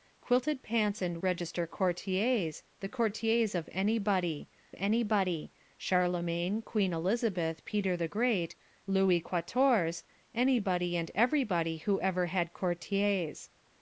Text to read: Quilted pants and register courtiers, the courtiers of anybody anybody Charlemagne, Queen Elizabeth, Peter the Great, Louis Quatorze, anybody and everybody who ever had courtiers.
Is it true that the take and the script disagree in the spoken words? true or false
false